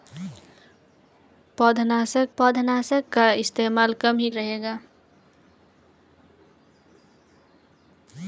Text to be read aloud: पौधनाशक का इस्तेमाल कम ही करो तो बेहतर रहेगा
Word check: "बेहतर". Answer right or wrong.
wrong